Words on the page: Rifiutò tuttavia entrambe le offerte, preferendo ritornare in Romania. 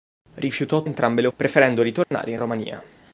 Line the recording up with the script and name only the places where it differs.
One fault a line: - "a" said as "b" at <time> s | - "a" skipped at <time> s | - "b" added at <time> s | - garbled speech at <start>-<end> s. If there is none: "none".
- "tuttavia" skipped at 0.8 s
- "offerte" skipped at 1.3 s